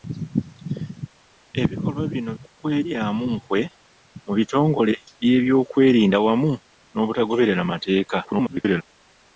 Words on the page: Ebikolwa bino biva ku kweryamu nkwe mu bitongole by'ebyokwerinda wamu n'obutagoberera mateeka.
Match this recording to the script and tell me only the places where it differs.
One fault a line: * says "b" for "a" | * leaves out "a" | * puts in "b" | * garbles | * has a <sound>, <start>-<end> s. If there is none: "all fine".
* leaves out "biva"
* garbles